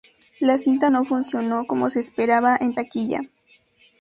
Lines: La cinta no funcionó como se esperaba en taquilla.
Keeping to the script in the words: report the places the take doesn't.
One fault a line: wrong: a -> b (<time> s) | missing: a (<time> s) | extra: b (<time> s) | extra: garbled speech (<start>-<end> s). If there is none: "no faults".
no faults